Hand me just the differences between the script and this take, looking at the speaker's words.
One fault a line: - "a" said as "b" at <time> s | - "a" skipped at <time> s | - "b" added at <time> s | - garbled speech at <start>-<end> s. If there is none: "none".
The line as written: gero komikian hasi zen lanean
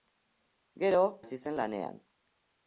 - "komikian" skipped at 1.0 s